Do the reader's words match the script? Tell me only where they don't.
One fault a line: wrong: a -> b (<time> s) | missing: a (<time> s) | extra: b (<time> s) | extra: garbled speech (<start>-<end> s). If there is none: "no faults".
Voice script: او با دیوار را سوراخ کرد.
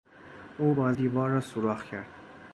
no faults